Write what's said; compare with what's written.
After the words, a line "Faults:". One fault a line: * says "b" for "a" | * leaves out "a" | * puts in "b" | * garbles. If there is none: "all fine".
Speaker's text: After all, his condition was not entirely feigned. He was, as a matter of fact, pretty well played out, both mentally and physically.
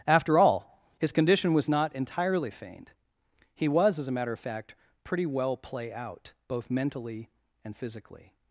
After all, his condition was not entirely feigned. He was, as a matter of fact, pretty well play out, both mentally and physically.
Faults:
* says "play" for "played"